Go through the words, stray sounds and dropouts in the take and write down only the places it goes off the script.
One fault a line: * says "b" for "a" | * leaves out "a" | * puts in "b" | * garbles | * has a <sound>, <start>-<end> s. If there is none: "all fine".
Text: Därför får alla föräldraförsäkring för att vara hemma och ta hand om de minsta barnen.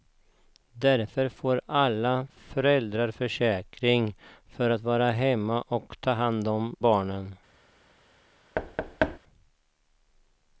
* leaves out "de minsta"
* has a thud, 8.5-9.2 s